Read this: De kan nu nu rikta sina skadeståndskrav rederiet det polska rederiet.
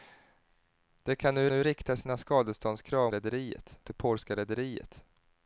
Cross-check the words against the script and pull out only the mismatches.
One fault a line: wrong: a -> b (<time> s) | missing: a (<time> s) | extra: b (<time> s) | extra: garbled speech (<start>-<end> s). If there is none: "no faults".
no faults